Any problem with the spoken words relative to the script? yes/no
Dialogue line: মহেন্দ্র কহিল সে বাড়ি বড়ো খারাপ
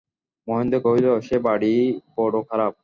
no